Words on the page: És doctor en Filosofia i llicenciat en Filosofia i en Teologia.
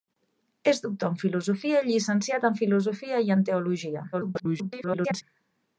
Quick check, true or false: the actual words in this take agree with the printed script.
false